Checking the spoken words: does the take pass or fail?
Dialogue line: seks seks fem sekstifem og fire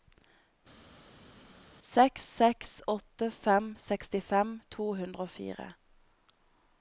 fail